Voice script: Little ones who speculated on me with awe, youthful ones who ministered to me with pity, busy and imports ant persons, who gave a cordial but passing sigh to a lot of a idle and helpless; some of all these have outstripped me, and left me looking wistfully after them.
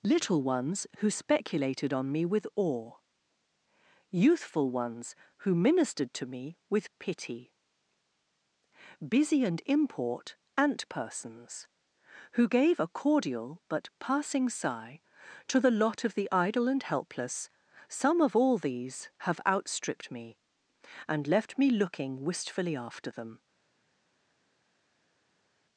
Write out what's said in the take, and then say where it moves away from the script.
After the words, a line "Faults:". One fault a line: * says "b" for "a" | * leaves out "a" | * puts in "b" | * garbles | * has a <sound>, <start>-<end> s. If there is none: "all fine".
Little ones who speculated on me with awe, youthful ones who ministered to me with pity, busy and import ant persons, who gave a cordial but passing sigh to the lot of the idle and helpless; some of all these have outstripped me, and left me looking wistfully after them.
Faults:
* says "import" for "imports"
* says "the" for "a"
* says "the" for "a"